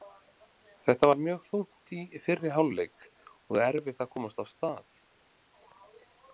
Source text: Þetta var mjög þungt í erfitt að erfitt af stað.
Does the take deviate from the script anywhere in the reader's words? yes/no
yes